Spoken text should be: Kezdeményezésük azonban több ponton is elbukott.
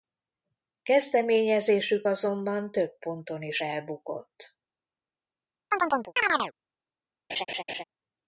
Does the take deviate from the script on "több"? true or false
false